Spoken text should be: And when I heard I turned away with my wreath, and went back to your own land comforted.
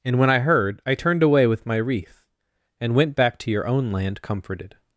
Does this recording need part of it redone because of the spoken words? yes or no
no